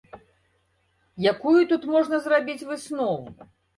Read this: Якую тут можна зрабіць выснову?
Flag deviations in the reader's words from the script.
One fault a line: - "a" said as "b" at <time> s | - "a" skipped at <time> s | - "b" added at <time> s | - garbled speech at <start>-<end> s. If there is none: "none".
none